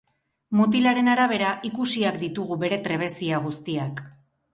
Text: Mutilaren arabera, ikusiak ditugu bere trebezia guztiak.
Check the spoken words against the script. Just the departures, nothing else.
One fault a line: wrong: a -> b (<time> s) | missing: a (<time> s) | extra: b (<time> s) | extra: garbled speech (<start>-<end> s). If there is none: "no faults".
no faults